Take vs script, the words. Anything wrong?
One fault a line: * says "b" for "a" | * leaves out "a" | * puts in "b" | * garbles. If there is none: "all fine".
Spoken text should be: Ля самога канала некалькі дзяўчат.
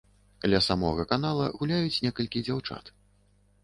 * puts in "гуляюць"